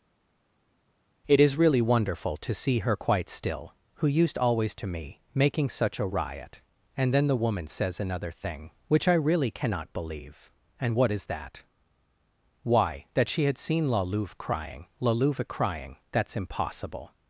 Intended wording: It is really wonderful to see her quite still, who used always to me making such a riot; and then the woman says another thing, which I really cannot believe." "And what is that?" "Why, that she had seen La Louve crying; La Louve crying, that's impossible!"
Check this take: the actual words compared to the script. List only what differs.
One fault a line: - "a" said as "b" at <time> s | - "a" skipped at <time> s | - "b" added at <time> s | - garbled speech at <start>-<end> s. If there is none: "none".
none